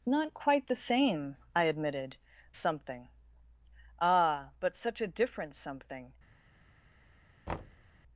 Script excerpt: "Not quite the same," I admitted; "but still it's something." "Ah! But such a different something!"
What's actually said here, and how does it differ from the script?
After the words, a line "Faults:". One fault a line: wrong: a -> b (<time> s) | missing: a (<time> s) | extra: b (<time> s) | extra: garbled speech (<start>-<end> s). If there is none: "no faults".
"Not quite the same," I admitted; "something." "Ah! But such a different something!"
Faults:
missing: but still it's (2.2 s)